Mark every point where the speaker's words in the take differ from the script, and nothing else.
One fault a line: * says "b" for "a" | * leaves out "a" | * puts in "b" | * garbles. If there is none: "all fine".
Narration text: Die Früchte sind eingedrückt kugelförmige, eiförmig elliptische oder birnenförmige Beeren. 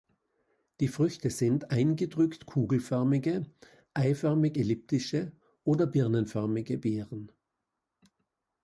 all fine